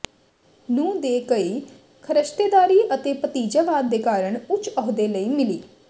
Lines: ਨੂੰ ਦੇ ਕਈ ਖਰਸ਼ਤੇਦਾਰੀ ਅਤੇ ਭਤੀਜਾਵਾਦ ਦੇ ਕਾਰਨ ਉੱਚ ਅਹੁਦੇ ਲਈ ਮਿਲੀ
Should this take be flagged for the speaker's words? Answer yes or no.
no